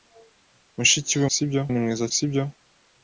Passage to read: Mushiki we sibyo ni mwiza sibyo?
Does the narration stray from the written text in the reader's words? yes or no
no